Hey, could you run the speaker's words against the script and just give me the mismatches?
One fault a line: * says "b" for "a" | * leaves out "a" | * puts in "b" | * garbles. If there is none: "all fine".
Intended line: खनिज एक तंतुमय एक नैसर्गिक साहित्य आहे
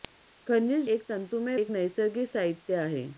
all fine